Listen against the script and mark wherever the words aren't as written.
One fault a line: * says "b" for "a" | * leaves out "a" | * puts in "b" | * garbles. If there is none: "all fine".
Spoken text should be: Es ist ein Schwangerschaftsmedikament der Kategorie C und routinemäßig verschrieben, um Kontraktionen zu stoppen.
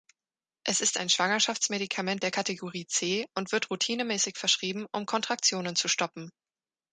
* puts in "wird"